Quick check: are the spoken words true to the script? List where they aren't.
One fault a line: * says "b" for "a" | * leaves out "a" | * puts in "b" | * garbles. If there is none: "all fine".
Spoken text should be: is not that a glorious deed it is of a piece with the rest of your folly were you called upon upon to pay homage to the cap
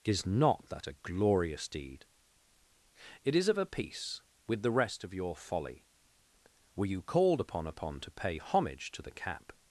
all fine